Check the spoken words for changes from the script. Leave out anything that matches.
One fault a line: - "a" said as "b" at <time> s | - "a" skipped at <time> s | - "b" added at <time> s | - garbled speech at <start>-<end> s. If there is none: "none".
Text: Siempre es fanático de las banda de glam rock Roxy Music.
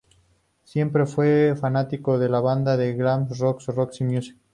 - "es" said as "fue" at 1.1 s
- "las" said as "la" at 2.3 s